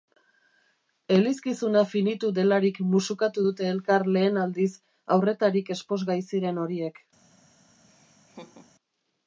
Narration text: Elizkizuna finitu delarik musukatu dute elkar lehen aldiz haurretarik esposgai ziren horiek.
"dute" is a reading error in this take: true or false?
false